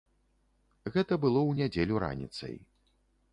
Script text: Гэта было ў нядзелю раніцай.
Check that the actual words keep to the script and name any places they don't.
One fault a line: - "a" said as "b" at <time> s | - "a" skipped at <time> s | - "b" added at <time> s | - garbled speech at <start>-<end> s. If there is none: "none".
none